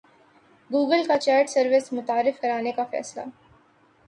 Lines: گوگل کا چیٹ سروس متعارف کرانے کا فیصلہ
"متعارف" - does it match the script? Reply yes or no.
yes